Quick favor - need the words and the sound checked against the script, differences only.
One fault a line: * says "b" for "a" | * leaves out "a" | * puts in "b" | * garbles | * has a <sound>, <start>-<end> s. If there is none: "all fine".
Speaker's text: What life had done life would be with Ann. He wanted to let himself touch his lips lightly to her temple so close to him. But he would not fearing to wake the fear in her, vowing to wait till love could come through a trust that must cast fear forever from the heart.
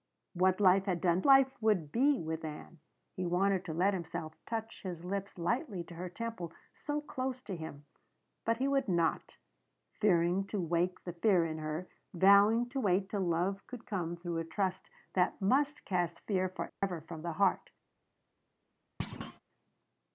* has a dropout, 16.7-16.8 s
* has a thud, 19.0-19.4 s